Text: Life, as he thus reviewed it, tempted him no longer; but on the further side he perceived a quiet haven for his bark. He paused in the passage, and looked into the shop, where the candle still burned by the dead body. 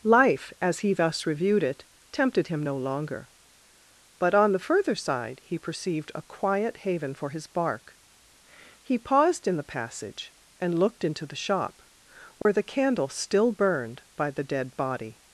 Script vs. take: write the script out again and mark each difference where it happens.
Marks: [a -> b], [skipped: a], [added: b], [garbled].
Life, as he thus reviewed it, tempted him no longer; but on the further side he perceived a quiet haven for his bark. He paused in the passage, and looked into the shop, where the candle still burned by the dead body.